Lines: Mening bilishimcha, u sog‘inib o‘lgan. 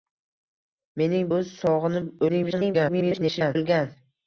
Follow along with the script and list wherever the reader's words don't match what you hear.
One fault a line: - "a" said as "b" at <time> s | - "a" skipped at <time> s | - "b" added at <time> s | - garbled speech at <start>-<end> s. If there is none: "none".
- "bilishimcha" skipped at 1.3 s
- garbled speech at 2.3-3.6 s